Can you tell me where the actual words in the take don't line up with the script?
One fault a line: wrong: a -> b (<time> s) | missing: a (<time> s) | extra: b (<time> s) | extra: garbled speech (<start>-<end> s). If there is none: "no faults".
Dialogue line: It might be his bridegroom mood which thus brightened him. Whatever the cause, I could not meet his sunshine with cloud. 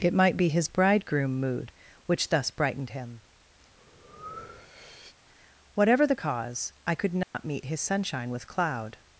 no faults